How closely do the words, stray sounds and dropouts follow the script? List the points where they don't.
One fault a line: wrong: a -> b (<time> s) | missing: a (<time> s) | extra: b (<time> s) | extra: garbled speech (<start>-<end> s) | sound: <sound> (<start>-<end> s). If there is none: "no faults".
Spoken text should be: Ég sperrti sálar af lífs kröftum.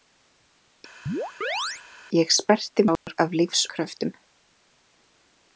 sound: chirp (1.1-1.8 s)
sound: dropout (3.0-3.1 s)